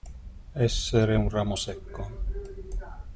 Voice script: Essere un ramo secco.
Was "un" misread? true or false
false